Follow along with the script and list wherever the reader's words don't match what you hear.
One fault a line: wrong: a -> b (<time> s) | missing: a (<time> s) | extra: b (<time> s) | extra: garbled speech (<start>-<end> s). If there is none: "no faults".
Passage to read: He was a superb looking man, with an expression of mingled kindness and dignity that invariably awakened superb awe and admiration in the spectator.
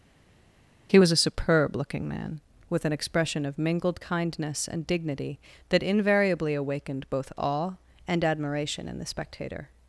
wrong: superb -> both (7.1 s)